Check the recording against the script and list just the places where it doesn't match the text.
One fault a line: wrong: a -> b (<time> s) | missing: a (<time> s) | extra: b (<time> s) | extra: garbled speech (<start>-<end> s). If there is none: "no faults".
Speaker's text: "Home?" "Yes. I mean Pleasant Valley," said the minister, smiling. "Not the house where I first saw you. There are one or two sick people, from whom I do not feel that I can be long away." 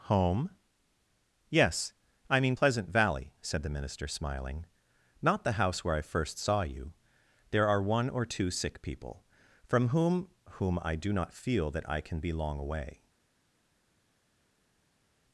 extra: whom (10.5 s)